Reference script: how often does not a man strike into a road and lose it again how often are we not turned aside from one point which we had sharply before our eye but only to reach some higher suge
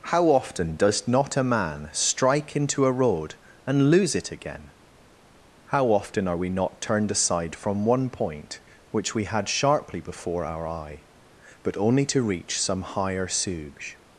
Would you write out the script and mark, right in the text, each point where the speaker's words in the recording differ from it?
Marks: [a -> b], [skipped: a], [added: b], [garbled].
how often does not a man strike into a road and lose it again how often are we not turned aside from one point which we had sharply before our eye but only to reach some higher suge